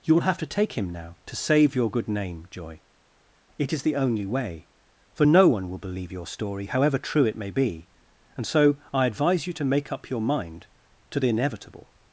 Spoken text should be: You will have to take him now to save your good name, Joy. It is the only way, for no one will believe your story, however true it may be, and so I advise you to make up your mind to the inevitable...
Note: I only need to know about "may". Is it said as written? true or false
true